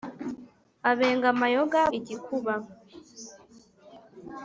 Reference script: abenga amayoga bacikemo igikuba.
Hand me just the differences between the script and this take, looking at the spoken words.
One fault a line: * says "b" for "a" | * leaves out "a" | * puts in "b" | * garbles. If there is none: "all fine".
* leaves out "bacikemo"